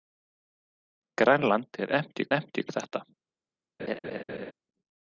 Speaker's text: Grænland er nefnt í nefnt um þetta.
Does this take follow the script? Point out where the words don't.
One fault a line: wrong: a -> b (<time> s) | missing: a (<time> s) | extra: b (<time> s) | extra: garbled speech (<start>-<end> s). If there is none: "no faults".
no faults